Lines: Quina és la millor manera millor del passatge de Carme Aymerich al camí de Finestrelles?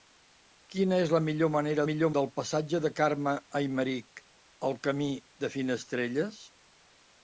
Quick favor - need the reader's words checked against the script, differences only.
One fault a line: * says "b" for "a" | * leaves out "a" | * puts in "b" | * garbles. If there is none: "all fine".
all fine